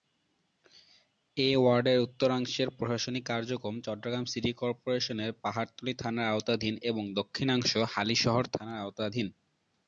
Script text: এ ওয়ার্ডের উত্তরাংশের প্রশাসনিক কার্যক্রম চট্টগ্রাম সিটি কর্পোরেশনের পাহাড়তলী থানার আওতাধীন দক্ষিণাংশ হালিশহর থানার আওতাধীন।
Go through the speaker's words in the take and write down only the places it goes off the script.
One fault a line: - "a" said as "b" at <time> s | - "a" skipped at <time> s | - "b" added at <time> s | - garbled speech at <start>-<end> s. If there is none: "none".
- "এবং" added at 6.9 s